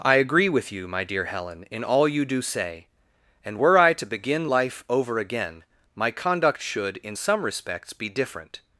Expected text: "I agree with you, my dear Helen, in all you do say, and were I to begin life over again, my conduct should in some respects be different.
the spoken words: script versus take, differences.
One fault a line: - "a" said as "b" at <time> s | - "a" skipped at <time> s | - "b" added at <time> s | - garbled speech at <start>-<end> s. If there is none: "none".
none